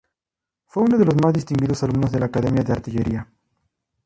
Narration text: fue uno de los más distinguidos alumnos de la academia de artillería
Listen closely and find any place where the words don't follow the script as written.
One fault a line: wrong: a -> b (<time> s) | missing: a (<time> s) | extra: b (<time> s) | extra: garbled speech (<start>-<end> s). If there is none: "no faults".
no faults